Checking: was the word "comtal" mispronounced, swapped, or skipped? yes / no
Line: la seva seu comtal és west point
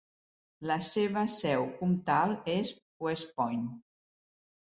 no